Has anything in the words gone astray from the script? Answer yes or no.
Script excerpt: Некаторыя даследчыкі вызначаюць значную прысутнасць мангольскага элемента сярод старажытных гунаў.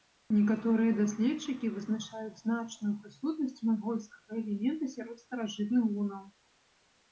no